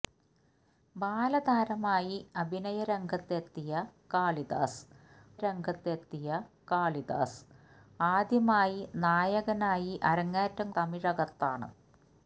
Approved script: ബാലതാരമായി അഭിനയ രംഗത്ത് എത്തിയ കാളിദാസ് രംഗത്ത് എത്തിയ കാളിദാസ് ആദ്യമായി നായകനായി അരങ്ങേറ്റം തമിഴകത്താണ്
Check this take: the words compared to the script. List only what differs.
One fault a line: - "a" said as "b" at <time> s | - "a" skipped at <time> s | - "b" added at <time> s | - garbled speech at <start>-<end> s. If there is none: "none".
none